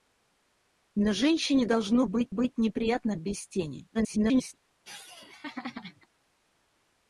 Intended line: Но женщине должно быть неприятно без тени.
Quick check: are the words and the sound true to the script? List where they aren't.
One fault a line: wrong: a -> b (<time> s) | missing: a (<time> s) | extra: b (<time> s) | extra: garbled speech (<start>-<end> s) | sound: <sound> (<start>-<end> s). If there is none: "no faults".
extra: быть (2.3 s)
extra: garbled speech (3.9-4.5 s)
sound: laugh (4.8-6.1 s)